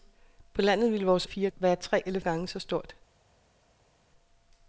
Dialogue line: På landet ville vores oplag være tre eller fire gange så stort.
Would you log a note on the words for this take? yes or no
yes